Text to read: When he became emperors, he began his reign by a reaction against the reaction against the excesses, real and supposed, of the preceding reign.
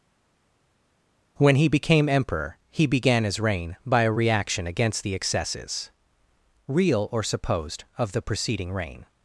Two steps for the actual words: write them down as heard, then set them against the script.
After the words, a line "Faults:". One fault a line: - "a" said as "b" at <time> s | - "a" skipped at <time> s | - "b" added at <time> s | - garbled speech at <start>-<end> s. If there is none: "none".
When he became emperor, he began his reign by a reaction against the excesses, real or supposed, of the preceding reign.
Faults:
- "emperors" said as "emperor" at 2.1 s
- "reaction against the" skipped at 5.1 s
- "and" said as "or" at 7.1 s